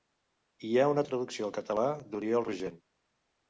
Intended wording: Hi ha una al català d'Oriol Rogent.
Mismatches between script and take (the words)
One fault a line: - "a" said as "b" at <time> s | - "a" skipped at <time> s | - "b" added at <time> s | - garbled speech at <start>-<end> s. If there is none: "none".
- "traducció" added at 1.1 s